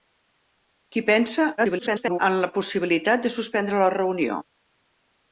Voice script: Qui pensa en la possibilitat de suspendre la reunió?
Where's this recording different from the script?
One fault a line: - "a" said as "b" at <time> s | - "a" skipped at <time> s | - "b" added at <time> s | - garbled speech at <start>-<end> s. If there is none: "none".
- garbled speech at 1.6-2.2 s